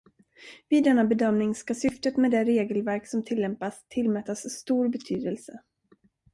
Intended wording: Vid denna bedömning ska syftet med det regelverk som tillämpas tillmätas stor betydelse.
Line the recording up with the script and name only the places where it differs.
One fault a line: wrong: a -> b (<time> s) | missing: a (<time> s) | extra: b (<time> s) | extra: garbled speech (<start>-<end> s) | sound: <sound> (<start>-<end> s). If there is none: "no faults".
no faults